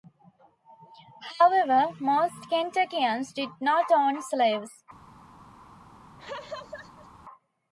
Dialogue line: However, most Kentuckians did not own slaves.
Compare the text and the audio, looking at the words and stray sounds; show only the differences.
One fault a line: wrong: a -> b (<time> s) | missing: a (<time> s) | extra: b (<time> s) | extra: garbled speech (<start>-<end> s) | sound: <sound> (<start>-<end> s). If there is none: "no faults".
sound: laugh (6.2-7.1 s)